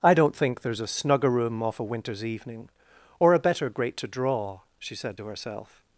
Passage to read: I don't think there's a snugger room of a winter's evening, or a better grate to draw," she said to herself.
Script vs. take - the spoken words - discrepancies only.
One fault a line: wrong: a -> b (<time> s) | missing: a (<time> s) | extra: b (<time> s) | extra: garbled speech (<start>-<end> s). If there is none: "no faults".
wrong: of -> off (1.6 s)